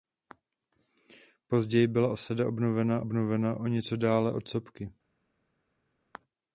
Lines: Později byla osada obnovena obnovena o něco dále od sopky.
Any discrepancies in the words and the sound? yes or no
no